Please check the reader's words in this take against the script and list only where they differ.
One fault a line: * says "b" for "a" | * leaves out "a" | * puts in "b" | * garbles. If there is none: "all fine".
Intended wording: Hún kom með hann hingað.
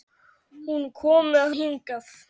* leaves out "hann"